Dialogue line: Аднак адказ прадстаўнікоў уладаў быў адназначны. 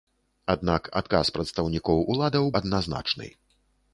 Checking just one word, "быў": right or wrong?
wrong